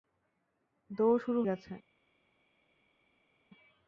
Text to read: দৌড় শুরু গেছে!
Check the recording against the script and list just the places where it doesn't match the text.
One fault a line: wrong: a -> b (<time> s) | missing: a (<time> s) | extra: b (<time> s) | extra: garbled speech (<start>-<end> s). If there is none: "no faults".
no faults